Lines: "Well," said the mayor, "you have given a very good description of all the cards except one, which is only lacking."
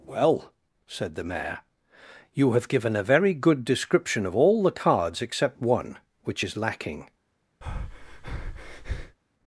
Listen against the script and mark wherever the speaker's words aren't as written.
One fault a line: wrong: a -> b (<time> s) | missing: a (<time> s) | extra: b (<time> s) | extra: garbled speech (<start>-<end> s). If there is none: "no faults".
missing: only (6.5 s)